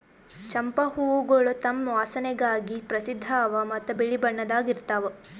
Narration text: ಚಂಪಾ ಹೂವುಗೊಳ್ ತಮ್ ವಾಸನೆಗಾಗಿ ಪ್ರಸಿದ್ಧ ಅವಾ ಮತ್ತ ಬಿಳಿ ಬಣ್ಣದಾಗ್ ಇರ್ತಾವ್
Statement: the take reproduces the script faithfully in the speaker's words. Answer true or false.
true